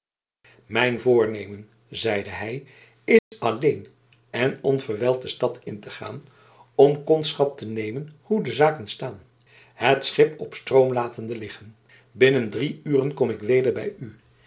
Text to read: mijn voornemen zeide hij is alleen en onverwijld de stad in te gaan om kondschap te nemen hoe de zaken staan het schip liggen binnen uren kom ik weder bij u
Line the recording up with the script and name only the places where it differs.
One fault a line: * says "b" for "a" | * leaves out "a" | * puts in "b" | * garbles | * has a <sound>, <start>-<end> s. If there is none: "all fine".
* has a dropout, 3.2-3.3 s
* puts in "op stroom latende"
* puts in "drie"